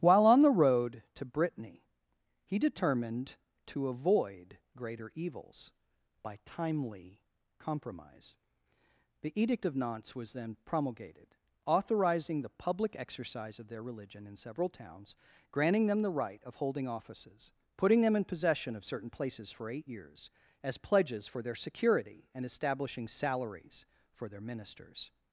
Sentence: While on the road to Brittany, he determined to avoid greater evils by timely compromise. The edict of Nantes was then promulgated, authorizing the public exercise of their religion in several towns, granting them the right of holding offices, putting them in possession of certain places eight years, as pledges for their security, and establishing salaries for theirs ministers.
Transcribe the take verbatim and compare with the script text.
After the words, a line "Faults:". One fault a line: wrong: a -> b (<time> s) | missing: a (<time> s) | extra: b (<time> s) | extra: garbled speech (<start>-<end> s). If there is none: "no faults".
While on the road to Brittany, he determined to avoid greater evils by timely compromise. The edict of Nantes was then promulgated, authorizing the public exercise of their religion in several towns, granting them the right of holding offices, putting them in possession of certain places for eight years, as pledges for their security, and establishing salaries for their ministers.
Faults:
extra: for (19.5 s)
wrong: theirs -> their (24.3 s)